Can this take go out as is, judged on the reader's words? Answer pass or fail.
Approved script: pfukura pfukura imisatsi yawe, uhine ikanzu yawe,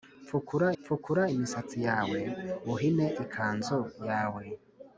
pass